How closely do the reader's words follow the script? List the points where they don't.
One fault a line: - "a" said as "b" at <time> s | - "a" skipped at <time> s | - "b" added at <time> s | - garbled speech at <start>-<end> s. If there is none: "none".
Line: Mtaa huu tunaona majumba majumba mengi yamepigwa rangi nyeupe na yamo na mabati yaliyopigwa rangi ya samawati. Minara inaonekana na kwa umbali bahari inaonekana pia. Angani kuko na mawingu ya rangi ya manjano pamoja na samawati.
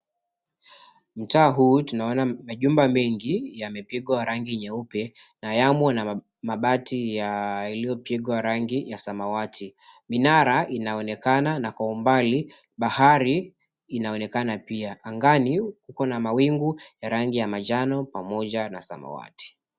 - "majumba" skipped at 2.9 s